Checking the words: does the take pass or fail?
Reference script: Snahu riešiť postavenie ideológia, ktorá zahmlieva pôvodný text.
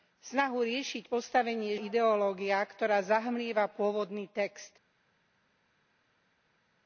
pass